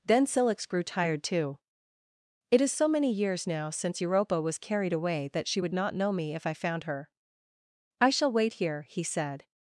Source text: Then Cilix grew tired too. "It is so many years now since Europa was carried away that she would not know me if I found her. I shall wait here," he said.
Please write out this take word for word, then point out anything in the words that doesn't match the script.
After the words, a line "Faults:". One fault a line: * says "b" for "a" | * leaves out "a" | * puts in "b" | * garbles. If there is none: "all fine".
Then Cilix grew tired too. "It is so many years now since Europa was carried away that she would not know me if I found her. I shall wait here," he said.
Faults:
all fine